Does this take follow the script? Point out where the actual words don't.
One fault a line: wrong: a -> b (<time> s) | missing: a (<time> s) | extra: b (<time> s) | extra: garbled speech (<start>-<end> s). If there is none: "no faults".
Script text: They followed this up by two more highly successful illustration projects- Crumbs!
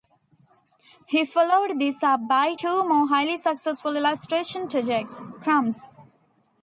wrong: They -> He (1.1 s)